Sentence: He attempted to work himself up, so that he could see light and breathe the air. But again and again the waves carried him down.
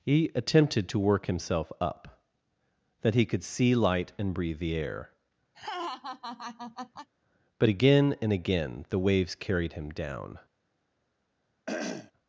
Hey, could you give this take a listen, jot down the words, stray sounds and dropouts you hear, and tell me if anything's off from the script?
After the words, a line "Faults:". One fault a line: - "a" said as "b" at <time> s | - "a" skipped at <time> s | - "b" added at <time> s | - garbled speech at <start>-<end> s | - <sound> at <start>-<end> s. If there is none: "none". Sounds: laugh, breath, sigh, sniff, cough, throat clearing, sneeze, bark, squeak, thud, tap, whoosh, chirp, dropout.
He attempted to work himself up, that he could see light and breathe the air. But again and again the waves carried him down.
Faults:
- "so" skipped at 2.2 s
- laugh at 5.5-7.1 s
- throat clearing at 11.7-12.1 s